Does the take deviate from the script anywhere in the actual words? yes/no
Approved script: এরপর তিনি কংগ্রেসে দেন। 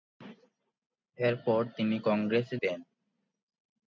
no